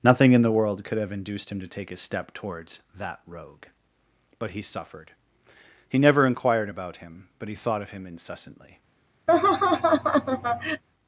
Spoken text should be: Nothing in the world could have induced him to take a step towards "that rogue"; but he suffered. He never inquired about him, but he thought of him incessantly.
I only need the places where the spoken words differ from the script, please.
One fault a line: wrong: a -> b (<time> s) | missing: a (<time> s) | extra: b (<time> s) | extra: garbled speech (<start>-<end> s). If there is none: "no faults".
no faults